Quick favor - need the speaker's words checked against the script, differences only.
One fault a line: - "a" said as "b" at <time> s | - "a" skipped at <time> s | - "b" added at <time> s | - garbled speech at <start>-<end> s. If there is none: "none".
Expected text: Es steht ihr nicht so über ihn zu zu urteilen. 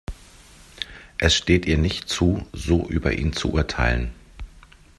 - "zu" added at 2.1 s
- "zu" skipped at 3.5 s